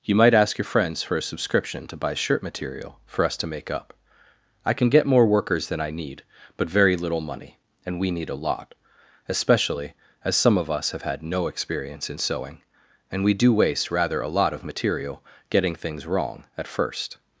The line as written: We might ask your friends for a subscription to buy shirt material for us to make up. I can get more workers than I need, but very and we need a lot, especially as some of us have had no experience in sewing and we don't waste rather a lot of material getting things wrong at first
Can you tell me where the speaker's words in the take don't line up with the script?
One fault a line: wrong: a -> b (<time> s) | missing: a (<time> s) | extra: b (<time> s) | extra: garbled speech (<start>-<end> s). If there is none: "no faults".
wrong: We -> You (0.0 s)
extra: little money (7.0 s)
wrong: don't -> do (13.3 s)